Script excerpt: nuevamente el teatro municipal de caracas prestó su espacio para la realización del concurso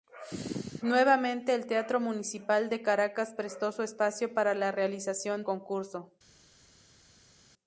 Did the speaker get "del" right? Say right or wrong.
wrong